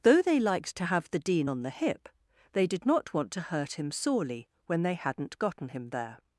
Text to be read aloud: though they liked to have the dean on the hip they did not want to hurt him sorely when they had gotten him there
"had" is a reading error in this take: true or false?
true